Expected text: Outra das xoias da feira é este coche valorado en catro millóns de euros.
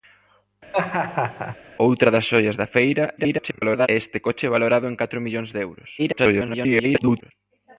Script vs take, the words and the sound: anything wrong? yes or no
yes